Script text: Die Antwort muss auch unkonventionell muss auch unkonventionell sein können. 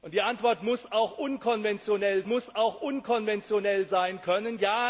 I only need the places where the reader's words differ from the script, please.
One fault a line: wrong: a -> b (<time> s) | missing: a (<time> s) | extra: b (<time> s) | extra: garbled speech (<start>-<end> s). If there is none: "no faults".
no faults